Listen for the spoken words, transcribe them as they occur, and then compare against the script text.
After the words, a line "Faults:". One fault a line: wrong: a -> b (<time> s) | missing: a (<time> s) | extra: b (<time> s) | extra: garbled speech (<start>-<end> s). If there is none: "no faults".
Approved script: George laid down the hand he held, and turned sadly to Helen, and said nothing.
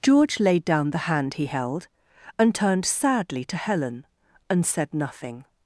George laid down the hand he held, and turned sadly to Helen, and said nothing.
Faults:
no faults